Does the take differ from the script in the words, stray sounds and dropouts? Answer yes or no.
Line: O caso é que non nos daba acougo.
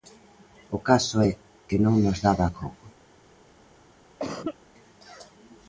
yes